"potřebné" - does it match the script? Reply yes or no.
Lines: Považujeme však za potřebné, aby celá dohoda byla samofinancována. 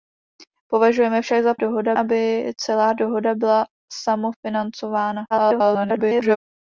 no